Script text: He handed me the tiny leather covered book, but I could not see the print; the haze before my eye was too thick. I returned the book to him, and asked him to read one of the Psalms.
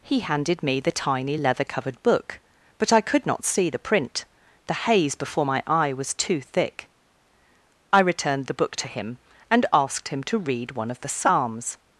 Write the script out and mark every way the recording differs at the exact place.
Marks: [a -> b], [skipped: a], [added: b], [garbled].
He handed me the tiny leather covered book, but I could not see the print; the haze before my eye was too thick. I returned the book to him, and asked him to read one of the Psalms.